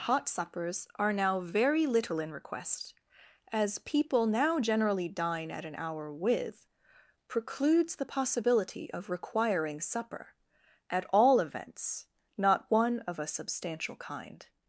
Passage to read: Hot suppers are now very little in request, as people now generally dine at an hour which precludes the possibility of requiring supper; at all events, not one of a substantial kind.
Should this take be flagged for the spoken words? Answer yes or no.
yes